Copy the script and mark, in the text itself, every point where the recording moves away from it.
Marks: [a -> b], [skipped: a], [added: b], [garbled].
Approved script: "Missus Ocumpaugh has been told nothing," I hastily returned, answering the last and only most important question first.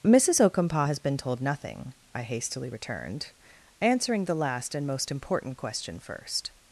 "Missus Ocumpaugh has been told nothing," I hastily returned, answering the last and [skipped: only] most important question first.